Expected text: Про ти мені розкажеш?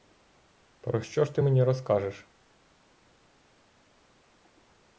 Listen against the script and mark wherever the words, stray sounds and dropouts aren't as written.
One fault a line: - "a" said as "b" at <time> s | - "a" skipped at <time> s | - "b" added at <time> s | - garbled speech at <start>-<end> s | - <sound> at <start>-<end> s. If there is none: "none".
- "що ж" added at 1.0 s